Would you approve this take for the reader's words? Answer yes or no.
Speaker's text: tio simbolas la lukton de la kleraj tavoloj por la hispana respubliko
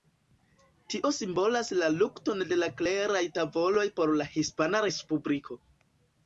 yes